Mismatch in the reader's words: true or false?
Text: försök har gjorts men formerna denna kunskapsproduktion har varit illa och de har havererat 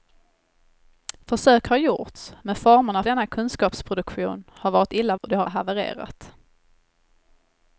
false